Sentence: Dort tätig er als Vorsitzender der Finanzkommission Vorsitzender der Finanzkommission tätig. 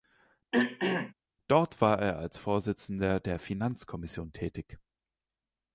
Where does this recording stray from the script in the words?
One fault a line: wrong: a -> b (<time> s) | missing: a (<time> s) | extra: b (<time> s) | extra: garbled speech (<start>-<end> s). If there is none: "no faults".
wrong: tätig -> war (1.8 s)
missing: Vorsitzender der Finanzkommission (4.3 s)